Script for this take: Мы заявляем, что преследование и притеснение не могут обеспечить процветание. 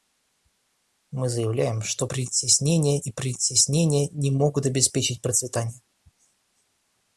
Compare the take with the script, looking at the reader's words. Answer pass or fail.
fail